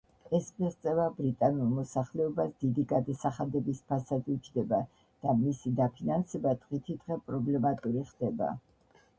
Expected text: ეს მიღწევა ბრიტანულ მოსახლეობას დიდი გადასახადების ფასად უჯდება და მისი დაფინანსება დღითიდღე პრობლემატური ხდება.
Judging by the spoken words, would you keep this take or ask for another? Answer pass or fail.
pass